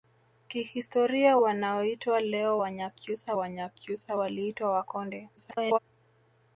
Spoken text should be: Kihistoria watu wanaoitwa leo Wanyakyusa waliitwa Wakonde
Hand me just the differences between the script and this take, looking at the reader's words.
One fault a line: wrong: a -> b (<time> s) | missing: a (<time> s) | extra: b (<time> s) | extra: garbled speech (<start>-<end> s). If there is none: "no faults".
missing: watu (1.4 s)
extra: Wanyakyusa (3.3 s)
extra: garbled speech (5.4-5.8 s)